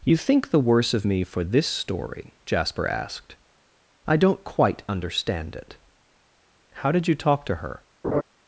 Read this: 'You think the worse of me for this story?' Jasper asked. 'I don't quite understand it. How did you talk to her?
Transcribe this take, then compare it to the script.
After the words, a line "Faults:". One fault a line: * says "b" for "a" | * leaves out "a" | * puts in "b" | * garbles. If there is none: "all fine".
'You think the worse of me for this story?' Jasper asked. 'I don't quite understand it. How did you talk to her?
Faults:
all fine